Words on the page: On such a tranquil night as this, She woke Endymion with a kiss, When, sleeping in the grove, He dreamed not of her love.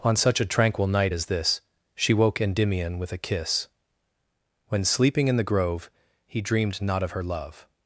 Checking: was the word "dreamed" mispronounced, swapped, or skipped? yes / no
no